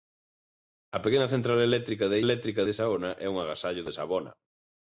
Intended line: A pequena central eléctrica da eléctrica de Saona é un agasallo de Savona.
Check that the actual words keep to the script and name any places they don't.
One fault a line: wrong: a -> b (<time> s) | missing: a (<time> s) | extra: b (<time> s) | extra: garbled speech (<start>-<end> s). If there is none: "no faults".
no faults